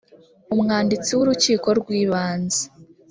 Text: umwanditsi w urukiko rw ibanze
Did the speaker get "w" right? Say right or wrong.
right